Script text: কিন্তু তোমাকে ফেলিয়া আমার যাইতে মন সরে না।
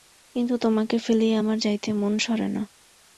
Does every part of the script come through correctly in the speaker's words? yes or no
yes